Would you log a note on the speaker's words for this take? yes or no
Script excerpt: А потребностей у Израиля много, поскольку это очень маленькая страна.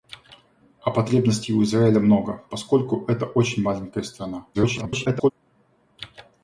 yes